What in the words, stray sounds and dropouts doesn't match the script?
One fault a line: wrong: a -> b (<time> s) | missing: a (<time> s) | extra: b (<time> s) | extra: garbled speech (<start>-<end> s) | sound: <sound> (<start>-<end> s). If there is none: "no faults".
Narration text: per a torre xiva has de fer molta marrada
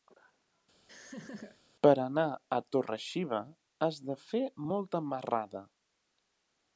sound: laugh (0.9-1.6 s)
extra: anar (2.0 s)